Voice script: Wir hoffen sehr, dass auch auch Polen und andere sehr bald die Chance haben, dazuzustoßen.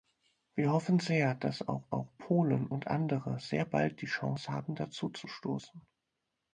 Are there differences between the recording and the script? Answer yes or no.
no